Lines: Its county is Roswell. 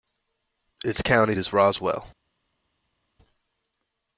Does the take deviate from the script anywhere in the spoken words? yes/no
no